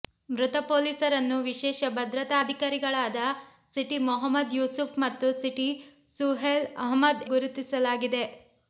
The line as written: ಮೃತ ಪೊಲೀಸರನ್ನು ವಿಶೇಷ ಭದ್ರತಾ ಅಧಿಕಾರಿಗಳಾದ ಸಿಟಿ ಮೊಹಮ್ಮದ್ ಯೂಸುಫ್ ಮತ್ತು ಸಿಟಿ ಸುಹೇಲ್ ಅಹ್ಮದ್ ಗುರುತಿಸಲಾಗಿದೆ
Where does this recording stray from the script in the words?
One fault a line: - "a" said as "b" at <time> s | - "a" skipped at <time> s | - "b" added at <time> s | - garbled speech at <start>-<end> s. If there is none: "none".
none